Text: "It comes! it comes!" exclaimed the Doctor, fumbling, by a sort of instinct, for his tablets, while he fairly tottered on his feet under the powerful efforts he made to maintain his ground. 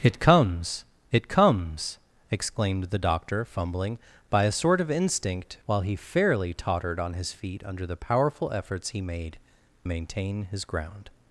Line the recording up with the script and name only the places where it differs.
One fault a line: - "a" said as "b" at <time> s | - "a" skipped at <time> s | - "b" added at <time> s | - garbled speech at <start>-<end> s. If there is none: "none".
- "for his tablets" skipped at 5.6 s
- "to" skipped at 9.4 s